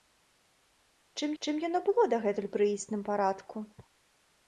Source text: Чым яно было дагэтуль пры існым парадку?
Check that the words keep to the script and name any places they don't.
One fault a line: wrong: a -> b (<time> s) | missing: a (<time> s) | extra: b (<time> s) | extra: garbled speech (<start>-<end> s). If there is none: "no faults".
extra: чым (1.4 s)